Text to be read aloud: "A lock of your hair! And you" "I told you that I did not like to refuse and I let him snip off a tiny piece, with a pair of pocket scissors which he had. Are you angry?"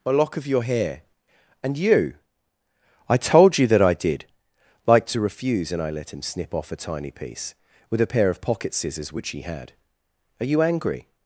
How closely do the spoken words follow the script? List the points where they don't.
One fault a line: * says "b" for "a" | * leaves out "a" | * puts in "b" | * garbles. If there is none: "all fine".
* leaves out "not"